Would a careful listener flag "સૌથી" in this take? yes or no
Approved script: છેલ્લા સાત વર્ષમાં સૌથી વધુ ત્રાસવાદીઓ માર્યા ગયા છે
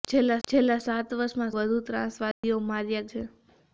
yes